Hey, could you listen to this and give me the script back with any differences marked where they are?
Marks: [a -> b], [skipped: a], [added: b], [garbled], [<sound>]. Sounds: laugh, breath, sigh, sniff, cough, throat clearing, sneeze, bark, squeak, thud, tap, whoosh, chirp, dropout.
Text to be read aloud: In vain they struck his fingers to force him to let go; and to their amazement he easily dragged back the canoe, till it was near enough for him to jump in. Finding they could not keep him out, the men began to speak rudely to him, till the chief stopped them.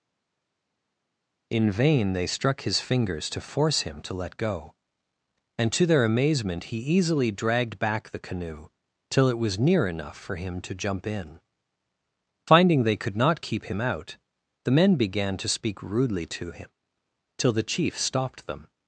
In vain they struck his fingers to force him to let go; and to their amazement he easily dragged back the canoe, till it was near enough for him to jump in. Finding they could not keep him out, the men began to speak rudely to him, till the chief stopped them.